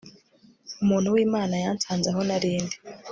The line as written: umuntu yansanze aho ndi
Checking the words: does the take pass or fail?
fail